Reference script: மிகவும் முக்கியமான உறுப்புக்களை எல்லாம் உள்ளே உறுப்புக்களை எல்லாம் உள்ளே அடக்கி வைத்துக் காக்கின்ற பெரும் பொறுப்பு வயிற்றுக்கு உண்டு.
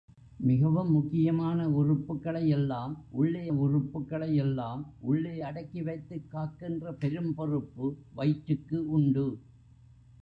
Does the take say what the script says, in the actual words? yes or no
yes